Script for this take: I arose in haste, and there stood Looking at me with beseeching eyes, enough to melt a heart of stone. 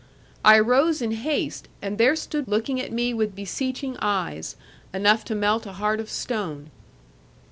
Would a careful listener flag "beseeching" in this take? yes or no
no